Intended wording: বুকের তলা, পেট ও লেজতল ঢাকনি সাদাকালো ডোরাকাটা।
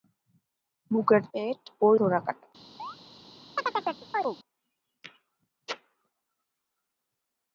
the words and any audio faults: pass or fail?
fail